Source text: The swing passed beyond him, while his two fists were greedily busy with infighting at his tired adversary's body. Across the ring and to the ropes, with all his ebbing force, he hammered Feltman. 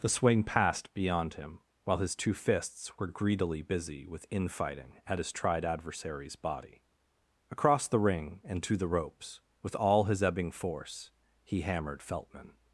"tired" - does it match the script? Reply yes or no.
no